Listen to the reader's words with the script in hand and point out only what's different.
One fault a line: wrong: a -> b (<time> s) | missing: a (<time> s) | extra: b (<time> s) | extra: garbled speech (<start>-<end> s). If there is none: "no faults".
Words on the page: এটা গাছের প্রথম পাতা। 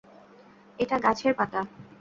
missing: প্রথম (1.3 s)